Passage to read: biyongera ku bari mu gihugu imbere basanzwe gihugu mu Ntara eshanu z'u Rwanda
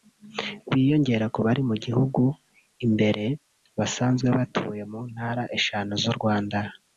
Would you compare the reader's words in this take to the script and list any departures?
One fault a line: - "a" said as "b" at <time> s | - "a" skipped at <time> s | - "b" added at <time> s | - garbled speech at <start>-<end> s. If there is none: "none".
- "gihugu" said as "batuye" at 4.4 s